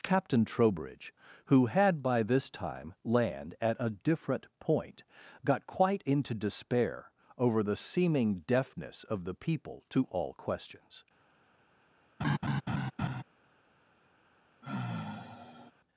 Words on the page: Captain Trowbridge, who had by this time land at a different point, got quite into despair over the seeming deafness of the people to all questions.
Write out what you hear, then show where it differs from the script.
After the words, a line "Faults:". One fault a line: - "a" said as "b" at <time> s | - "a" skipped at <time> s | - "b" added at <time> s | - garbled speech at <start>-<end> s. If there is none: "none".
Captain Trowbridge, who had by this time land at a different point, got quite into despair over the seeming deafness of the people to all questions.
Faults:
none